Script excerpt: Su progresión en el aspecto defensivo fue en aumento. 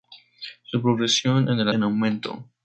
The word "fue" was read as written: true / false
false